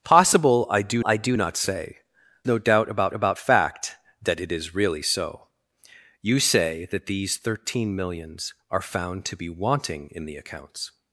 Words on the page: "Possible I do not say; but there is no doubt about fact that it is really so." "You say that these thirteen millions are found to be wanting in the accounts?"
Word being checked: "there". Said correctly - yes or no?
no